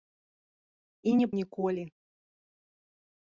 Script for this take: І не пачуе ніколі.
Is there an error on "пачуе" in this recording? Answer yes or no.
yes